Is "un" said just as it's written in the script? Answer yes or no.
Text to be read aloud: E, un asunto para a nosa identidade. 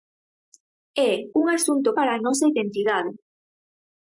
yes